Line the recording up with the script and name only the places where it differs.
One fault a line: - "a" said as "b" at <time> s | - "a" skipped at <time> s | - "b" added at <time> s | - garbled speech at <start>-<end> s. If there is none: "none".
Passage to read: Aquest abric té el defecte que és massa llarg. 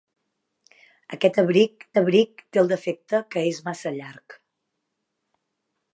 - "abric" added at 2.0 s